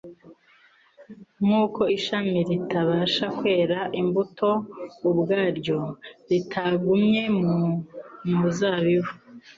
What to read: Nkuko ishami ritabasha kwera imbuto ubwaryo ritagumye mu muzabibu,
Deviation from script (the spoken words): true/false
false